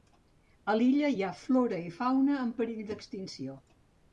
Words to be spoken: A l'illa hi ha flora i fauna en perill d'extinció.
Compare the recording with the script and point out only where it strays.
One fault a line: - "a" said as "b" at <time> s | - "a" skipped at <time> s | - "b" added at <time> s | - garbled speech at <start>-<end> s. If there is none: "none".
none